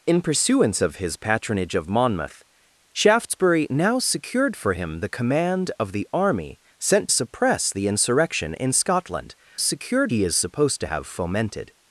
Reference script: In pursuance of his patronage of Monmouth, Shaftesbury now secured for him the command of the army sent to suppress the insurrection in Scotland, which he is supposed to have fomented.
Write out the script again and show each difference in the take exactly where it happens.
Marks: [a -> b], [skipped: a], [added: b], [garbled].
In pursuance of his patronage of Monmouth, Shaftesbury now secured for him the command of the army sent [skipped: to] suppress the insurrection in Scotland, [which -> secured] he is supposed to have fomented.